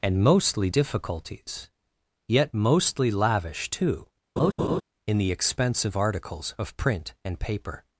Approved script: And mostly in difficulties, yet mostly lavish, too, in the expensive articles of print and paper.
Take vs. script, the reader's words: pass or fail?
fail